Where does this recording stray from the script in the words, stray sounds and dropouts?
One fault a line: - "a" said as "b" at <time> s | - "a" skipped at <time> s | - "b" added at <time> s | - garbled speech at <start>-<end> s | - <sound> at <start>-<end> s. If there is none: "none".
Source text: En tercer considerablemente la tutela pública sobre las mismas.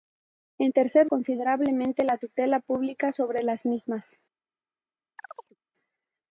- chirp at 5.2-5.6 s